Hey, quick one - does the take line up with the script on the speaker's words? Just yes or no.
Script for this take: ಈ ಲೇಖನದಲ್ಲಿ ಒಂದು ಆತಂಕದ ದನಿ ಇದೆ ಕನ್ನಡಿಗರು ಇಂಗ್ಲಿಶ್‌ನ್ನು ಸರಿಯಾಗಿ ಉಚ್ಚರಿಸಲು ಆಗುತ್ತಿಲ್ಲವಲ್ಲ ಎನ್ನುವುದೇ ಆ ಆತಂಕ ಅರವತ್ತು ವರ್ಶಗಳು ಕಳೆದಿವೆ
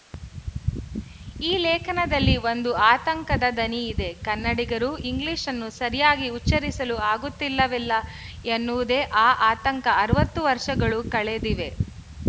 yes